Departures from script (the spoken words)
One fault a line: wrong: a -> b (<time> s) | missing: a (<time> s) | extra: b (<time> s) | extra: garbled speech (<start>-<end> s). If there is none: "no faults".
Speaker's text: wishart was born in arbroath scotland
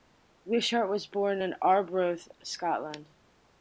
no faults